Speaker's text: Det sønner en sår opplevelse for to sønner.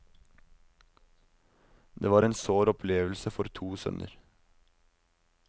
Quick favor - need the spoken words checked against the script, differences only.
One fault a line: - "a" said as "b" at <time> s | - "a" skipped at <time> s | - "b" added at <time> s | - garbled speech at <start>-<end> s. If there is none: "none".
- "sønner" said as "var" at 2.1 s